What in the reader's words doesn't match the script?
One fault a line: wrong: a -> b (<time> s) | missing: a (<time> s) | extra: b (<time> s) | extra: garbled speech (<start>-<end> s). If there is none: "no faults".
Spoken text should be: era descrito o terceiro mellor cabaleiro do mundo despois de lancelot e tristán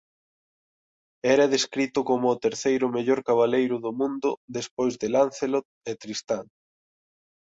extra: como (2.1 s)